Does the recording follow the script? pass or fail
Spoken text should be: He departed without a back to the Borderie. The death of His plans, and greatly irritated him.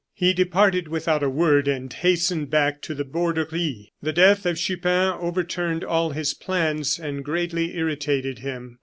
fail